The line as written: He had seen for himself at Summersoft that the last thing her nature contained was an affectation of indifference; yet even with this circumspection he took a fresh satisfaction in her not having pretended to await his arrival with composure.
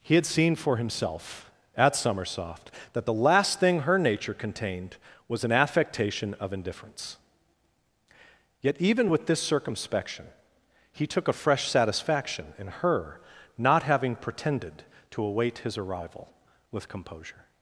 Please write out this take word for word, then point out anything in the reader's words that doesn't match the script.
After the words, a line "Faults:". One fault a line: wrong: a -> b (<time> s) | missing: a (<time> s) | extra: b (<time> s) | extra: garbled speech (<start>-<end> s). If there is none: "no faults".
He had seen for himself at Summersoft that the last thing her nature contained was an affectation of indifference; yet even with this circumspection he took a fresh satisfaction in her not having pretended to await his arrival with composure.
Faults:
no faults